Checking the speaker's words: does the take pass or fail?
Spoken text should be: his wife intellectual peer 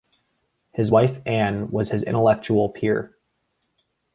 fail